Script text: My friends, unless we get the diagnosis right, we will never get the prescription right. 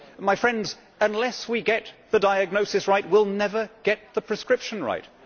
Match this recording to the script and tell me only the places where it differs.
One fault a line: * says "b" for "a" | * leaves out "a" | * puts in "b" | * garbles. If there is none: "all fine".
all fine